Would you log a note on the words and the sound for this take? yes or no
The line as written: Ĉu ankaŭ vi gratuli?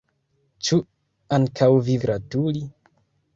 no